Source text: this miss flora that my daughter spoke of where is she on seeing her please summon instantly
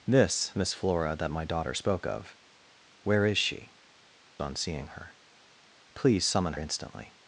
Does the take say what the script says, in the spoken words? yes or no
yes